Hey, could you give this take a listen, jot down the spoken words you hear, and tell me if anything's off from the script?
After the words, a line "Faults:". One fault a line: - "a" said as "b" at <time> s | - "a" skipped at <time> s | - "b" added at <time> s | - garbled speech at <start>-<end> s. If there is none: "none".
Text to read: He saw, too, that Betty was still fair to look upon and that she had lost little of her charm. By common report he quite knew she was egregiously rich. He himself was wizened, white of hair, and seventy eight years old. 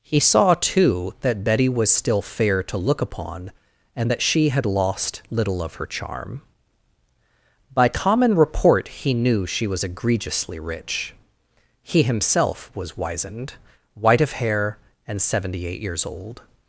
He saw, too, that Betty was still fair to look upon and that she had lost little of her charm. By common report he knew she was egregiously rich. He himself was wizened, white of hair, and seventy eight years old.
Faults:
- "quite" skipped at 9.1 s